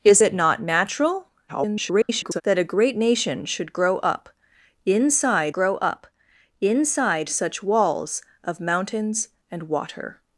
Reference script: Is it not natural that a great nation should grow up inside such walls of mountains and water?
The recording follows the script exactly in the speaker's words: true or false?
false